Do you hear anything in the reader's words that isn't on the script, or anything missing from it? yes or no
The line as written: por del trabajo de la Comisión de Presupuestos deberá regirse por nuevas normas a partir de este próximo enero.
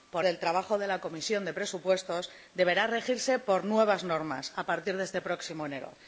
no